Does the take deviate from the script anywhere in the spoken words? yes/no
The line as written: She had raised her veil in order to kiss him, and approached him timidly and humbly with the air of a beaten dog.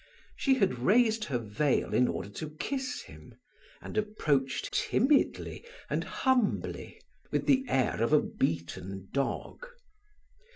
yes